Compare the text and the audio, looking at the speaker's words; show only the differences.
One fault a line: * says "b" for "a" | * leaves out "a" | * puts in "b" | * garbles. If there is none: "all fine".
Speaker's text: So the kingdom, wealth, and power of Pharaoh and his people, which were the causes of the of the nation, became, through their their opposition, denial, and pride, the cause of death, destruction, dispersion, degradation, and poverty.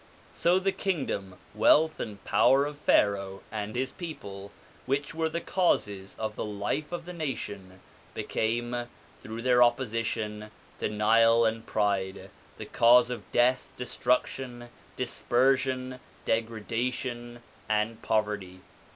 * puts in "life"
* leaves out "their"